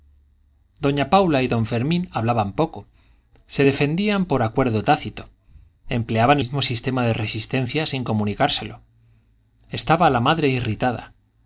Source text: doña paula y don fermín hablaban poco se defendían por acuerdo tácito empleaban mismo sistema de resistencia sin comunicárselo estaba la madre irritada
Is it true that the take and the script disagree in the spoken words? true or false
false